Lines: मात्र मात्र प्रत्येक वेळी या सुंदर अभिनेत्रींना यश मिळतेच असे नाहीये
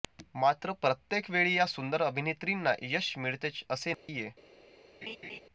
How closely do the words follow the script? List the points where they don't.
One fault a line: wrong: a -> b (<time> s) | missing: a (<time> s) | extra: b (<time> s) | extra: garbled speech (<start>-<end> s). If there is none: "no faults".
missing: मात्र (0.7 s)